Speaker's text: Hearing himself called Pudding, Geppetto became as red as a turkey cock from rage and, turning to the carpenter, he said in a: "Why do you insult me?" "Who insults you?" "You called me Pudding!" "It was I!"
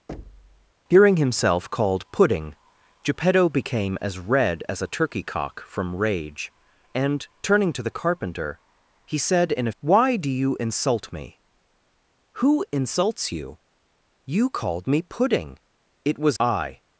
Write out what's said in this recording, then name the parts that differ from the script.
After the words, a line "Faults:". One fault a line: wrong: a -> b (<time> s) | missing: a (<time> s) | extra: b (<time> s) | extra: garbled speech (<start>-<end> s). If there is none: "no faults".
Hearing himself called Pudding, Geppetto became as red as a turkey cock from rage and, turning to the carpenter, he said in a: "Why do you insult me?" "Who insults you?" "You called me Pudding!" "It was I!"
Faults:
no faults